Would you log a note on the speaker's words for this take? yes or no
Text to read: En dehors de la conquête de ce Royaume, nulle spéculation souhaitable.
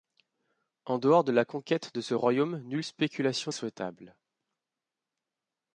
no